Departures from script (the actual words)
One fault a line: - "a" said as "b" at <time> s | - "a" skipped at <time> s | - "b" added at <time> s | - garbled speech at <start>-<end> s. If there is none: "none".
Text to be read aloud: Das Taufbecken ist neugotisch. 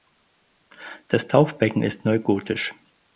none